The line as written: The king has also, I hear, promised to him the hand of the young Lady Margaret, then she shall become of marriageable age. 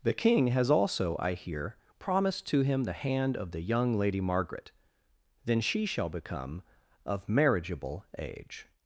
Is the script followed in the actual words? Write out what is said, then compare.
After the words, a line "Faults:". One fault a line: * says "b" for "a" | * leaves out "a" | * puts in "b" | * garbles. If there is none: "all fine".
The king has also, I hear, promised to him the hand of the young Lady Margaret, then she shall become of marriageable age.
Faults:
all fine